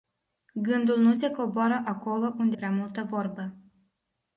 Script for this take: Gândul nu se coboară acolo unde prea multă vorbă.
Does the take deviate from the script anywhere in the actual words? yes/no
no